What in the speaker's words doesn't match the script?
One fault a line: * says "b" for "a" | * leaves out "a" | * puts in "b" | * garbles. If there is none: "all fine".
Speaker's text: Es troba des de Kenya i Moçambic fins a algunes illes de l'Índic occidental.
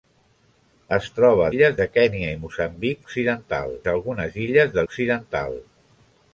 * says "illes" for "des"
* says "occidental" for "fins"
* leaves out "l'Índic"